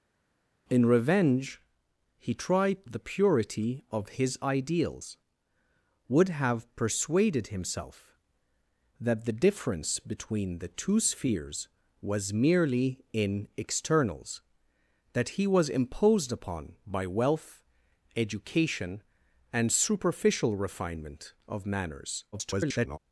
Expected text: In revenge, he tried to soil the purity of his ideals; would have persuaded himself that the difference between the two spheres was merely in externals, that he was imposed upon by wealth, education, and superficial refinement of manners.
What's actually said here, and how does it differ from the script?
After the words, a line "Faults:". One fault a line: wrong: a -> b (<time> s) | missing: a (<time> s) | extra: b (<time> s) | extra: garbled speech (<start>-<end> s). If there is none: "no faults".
In revenge, he tried the purity of his ideals; would have persuaded himself that the difference between the two spheres was merely in externals, that he was imposed upon by wealth, education, and superficial refinement of manners. [garbled]
Faults:
missing: to soil (2.9 s)
extra: garbled speech (22.3-23.0 s)